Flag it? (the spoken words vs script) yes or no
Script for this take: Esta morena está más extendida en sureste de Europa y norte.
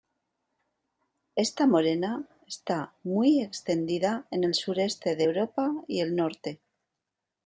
yes